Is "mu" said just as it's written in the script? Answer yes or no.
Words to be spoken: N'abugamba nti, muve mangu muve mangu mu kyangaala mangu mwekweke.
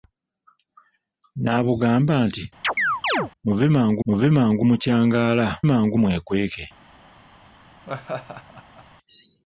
yes